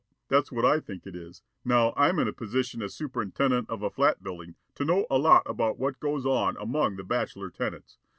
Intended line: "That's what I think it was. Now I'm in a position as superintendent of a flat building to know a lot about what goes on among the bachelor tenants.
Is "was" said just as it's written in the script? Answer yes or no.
no